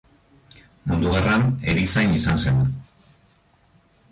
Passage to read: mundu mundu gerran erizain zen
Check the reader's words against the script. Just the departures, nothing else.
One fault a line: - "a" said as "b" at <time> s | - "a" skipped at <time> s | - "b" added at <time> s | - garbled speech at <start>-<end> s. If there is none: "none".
- "mundu" skipped at 1.1 s
- "izan" added at 2.2 s